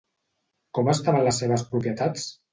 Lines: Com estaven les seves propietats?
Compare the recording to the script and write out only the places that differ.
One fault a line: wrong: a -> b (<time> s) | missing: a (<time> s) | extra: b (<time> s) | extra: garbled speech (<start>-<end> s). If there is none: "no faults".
no faults